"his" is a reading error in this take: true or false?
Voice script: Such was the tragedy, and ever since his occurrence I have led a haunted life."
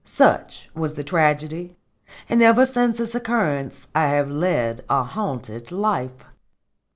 true